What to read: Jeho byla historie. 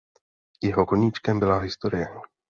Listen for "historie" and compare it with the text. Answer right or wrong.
right